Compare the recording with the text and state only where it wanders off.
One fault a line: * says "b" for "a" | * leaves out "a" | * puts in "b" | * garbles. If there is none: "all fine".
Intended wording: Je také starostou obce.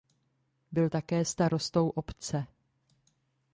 * says "Byl" for "Je"